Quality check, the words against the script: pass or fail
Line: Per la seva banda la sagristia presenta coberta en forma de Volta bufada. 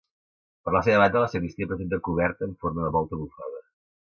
pass